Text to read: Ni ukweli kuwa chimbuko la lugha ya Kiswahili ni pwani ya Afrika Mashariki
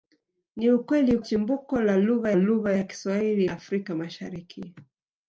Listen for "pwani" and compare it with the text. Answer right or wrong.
wrong